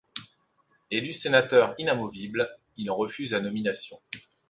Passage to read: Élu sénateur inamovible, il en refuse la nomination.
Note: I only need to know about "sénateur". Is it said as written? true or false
true